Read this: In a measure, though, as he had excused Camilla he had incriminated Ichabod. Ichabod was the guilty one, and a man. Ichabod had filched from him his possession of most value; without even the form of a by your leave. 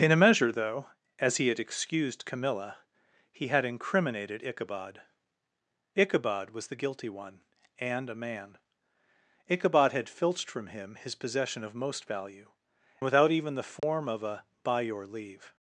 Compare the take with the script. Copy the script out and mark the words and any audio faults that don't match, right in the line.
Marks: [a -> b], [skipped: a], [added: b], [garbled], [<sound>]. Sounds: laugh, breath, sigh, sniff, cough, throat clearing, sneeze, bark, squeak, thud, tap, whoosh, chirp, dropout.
In a measure, though, as he had excused Camilla he had incriminated Ichabod. Ichabod was the guilty one, and a man. Ichabod had filched from him his possession of most value; without even the form [dropout] of a by your leave.